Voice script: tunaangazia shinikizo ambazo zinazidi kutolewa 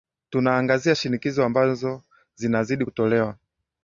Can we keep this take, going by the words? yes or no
yes